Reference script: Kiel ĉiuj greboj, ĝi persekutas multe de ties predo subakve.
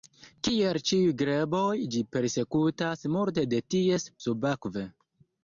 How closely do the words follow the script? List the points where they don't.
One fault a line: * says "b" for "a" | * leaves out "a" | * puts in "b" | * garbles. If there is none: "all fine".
* leaves out "predo"